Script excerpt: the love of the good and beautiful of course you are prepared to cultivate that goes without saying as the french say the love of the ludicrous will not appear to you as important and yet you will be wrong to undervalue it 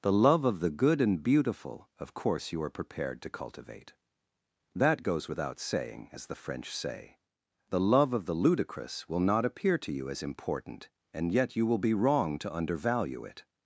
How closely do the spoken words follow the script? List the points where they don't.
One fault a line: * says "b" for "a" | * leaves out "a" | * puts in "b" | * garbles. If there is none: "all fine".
all fine